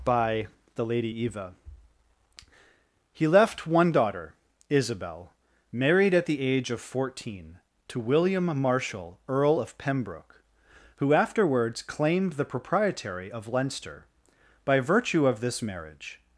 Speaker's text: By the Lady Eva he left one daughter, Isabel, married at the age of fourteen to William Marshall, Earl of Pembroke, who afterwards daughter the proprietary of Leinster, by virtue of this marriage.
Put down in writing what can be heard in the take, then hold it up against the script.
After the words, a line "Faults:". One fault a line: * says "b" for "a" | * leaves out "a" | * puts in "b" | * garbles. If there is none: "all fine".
By the Lady Eva he left one daughter, Isabel, married at the age of fourteen to William Marshall, Earl of Pembroke, who afterwards claimed the proprietary of Leinster, by virtue of this marriage.
Faults:
* says "claimed" for "daughter"